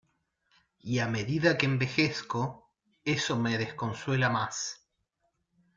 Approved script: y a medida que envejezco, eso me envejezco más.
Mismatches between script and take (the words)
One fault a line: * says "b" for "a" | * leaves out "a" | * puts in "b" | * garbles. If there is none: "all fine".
* says "desconsuela" for "envejezco"